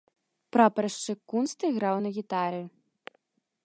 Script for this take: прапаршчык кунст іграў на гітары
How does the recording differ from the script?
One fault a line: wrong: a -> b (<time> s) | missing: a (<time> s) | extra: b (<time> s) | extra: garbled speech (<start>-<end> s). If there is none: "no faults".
no faults